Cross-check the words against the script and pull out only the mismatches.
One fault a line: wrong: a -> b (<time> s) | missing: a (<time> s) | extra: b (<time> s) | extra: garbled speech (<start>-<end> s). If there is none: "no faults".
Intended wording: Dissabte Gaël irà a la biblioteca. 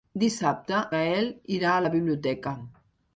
no faults